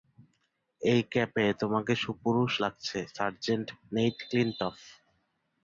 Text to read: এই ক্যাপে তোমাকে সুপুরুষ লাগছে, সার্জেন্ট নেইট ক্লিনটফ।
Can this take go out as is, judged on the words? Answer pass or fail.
pass